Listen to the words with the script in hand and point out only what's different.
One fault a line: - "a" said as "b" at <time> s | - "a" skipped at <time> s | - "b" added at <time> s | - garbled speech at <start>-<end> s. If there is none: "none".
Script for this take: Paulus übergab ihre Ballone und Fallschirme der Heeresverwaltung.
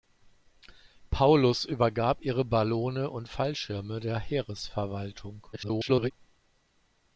- garbled speech at 5.5-6.1 s